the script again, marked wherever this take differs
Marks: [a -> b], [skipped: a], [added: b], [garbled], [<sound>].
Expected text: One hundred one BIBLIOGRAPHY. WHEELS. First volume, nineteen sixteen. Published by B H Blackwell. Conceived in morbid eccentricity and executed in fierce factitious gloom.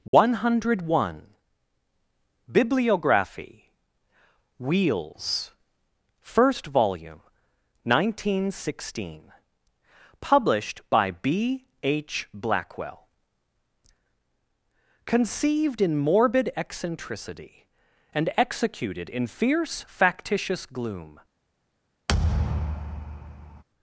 One [dropout] hundred one BIBLIOGRAPHY. WHEELS. First volume, nineteen sixteen. Published by B H Blackwell. Conceived in morbid eccentricity and executed in fierce factitious gloom. [thud]